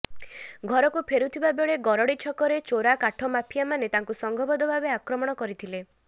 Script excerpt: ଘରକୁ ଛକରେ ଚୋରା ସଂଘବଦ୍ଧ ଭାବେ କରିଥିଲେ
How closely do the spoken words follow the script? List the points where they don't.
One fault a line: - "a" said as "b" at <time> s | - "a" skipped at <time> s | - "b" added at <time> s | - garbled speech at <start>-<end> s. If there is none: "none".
- "ଫେରୁଥିବା ବେଳେ ଗରଡ଼ି" added at 1.1 s
- "କାଠ ମାଫିଆମାନେ ତାଙ୍କୁ" added at 3.0 s
- "ଆକ୍ରମଣ" added at 4.9 s